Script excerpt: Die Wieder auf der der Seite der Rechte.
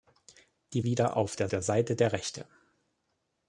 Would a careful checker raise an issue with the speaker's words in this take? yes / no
no